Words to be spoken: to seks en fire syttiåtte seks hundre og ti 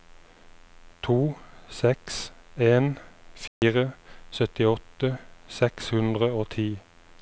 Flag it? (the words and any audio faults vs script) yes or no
yes